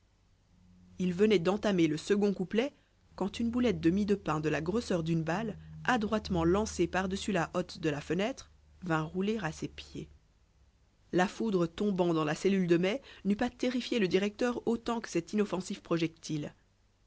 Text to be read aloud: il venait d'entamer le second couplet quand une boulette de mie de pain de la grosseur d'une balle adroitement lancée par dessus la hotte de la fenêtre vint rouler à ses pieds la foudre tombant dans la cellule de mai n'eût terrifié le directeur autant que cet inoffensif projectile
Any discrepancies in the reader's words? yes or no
yes